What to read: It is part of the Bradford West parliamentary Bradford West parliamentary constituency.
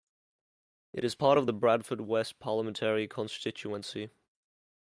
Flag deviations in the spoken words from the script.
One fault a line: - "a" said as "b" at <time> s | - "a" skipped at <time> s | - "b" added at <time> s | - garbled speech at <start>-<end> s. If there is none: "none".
- "Bradford West parliamentary" skipped at 3.1 s